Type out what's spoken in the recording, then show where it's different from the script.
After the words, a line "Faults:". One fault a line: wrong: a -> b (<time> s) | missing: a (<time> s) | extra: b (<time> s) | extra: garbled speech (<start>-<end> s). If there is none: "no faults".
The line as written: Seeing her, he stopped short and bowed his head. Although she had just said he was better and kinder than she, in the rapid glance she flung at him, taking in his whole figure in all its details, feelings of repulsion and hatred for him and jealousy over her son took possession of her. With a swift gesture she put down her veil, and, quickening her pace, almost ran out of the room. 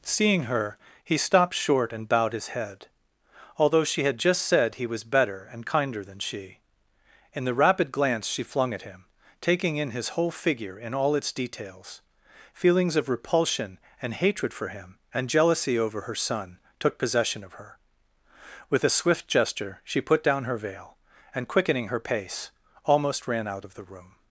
Seeing her, he stopped short and bowed his head. Although she had just said he was better and kinder than she, in the rapid glance she flung at him, taking in his whole figure in all its details, feelings of repulsion and hatred for him and jealousy over her son took possession of her. With a swift gesture she put down her veil, and, quickening her pace, almost ran out of the room.
Faults:
no faults